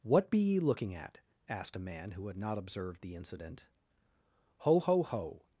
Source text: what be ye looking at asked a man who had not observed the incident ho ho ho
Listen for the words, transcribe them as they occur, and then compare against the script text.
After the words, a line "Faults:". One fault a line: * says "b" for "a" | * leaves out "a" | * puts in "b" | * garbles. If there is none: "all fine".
what be ye looking at asked a man who had not observed the incident ho ho ho
Faults:
all fine